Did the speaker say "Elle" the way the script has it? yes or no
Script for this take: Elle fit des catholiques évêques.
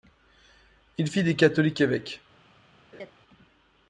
no